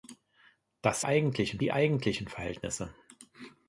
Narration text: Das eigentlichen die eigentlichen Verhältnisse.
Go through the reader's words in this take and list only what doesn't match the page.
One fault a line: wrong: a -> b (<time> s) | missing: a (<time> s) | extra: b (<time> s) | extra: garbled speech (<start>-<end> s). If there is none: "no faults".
no faults